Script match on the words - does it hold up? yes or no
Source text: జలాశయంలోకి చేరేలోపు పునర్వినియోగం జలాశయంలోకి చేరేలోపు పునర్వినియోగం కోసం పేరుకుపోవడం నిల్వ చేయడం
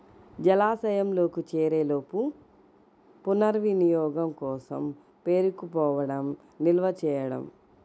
no